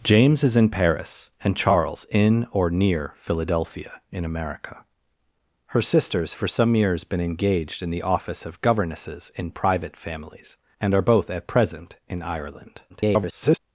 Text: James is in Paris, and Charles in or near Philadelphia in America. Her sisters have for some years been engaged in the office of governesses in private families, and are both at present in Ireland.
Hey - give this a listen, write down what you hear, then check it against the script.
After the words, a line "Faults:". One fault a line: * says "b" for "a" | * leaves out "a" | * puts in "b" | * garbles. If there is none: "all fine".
James is in Paris, and Charles in or near Philadelphia in America. Her sisters for some years been engaged in the office of governesses in private families, and are both at present in Ireland. [garbled]
Faults:
* leaves out "have"
* garbles